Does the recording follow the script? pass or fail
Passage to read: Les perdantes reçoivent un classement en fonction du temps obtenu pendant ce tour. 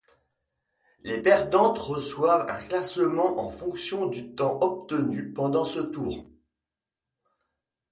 pass